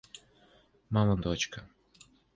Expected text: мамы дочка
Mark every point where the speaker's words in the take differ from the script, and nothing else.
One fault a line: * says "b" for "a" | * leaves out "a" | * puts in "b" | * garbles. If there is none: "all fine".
all fine